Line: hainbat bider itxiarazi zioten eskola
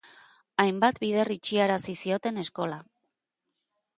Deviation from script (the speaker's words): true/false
false